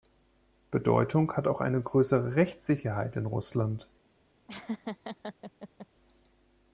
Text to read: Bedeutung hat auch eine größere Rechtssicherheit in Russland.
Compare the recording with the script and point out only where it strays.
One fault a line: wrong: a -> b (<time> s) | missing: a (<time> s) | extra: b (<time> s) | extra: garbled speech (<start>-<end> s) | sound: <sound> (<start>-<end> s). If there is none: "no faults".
sound: laugh (4.5-5.9 s)